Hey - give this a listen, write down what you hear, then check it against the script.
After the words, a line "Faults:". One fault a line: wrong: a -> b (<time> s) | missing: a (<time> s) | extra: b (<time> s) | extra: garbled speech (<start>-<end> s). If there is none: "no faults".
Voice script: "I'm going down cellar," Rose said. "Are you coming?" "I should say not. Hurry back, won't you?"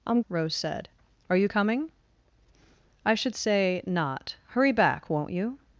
"I'm," Rose said. "Are you coming?" "I should say not. Hurry back, won't you?"
Faults:
missing: going down cellar (0.2 s)